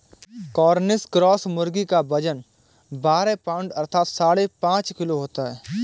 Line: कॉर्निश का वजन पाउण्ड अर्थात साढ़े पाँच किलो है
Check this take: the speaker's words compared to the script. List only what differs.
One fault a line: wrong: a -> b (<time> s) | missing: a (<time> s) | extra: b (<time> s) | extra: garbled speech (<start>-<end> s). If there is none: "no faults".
extra: क्रॉस मुर्गी (1.1 s)
extra: बारह (2.9 s)
extra: होता (5.2 s)